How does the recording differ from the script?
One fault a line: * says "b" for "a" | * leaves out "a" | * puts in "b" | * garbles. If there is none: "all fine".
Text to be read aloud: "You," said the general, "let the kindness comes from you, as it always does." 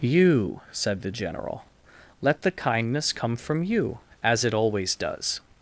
* says "come" for "comes"